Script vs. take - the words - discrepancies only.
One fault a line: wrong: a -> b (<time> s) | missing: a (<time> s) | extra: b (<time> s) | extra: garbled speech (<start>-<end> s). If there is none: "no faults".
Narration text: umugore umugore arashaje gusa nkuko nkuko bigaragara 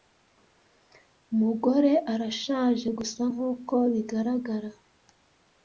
missing: umugore (1.9 s)
missing: nkuko (3.7 s)